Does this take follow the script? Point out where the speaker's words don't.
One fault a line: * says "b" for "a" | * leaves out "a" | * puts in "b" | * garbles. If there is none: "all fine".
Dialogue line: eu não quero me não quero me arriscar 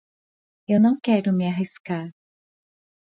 * leaves out "não quero me"